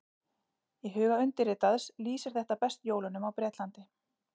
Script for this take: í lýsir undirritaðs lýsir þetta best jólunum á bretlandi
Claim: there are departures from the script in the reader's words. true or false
true